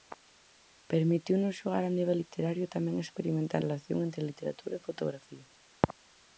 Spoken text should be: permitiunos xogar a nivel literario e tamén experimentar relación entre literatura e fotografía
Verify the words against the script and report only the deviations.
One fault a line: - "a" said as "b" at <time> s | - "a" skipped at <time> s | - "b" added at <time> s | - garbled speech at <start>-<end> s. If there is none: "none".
none